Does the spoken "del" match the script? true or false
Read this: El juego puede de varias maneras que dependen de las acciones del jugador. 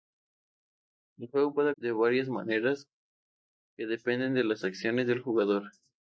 true